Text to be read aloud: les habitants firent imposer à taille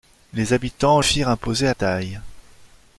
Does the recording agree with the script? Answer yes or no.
yes